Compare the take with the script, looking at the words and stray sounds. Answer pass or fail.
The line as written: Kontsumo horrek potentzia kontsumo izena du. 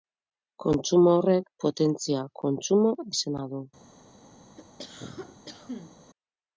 fail